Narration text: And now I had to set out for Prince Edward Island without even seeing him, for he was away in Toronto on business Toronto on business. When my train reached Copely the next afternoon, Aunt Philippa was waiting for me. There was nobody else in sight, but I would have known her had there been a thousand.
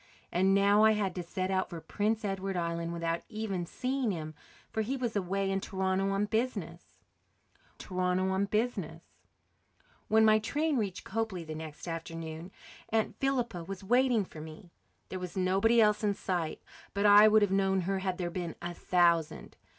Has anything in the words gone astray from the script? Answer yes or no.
no